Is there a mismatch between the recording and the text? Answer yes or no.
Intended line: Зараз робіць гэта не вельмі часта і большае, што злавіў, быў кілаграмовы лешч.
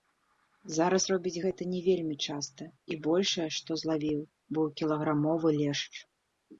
no